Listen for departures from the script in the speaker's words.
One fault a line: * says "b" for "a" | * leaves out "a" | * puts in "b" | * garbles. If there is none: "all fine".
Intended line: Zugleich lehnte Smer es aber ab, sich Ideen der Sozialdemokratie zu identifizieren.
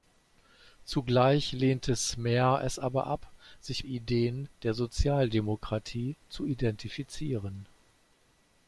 all fine